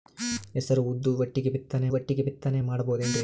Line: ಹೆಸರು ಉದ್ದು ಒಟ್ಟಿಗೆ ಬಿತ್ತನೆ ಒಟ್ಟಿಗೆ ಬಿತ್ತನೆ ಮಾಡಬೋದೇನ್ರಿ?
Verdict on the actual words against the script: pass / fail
pass